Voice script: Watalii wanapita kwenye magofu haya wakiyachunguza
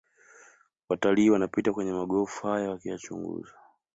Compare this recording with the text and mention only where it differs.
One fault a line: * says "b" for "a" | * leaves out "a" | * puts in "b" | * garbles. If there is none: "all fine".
all fine